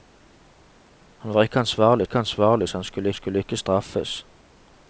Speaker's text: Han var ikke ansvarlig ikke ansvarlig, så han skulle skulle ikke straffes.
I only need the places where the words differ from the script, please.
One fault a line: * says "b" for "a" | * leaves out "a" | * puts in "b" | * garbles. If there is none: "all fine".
all fine